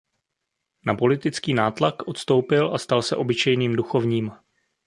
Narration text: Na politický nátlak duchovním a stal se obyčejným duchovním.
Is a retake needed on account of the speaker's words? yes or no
yes